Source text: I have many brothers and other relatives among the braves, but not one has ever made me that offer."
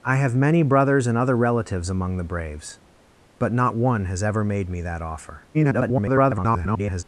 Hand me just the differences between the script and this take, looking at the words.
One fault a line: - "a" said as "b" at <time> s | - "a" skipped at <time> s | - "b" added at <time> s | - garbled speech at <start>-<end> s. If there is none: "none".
- garbled speech at 5.5-7.0 s